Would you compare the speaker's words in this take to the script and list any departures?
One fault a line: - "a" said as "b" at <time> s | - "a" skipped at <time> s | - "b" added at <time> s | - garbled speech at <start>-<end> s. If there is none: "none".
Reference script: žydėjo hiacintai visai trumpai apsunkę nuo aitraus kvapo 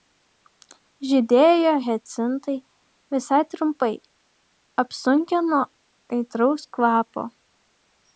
none